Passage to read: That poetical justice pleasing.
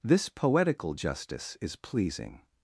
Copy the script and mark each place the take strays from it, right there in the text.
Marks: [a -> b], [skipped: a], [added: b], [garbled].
[That -> This] poetical justice [added: is] pleasing.